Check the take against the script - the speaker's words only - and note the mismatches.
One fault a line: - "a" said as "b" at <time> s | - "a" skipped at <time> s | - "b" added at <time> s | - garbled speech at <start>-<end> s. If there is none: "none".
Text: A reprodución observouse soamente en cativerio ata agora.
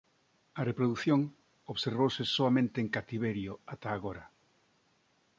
none